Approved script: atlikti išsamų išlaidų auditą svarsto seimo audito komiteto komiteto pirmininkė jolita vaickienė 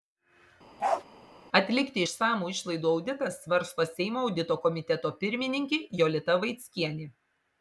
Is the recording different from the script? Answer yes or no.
yes